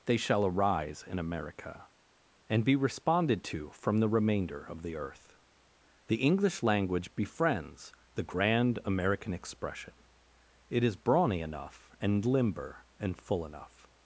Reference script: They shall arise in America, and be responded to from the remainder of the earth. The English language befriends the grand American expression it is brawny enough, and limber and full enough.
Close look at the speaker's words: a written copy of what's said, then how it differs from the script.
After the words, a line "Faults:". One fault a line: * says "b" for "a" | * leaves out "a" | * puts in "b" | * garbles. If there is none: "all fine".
They shall arise in America, and be responded to from the remainder of the earth. The English language befriends the grand American expression it is brawny enough, and limber and full enough.
Faults:
all fine